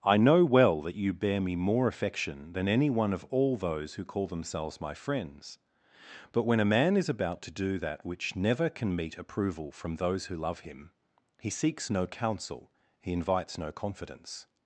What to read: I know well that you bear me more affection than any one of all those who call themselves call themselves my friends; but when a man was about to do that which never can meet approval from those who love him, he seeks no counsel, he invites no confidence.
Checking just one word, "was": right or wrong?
wrong